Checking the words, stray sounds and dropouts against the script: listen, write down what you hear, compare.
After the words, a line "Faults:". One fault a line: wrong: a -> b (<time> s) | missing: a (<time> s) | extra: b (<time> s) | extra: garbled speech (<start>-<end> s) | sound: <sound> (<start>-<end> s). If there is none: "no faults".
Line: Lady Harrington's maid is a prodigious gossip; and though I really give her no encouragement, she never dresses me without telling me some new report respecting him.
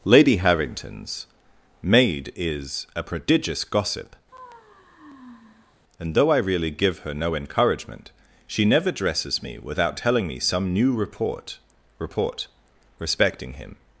Lady Harrington's maid is a prodigious gossip; and though I really give her no encouragement, she never dresses me without telling me some new report report respecting him.
Faults:
sound: sigh (4.3-5.8 s)
extra: report (12.0 s)